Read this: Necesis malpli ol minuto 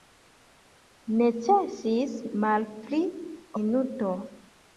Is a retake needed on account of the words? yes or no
yes